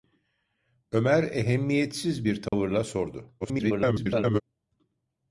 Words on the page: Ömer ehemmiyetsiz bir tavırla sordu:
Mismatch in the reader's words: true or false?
true